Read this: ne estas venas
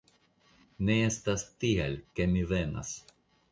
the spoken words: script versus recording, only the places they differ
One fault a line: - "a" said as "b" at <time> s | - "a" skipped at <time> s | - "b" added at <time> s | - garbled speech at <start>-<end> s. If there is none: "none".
- "tial ke mi" added at 1.6 s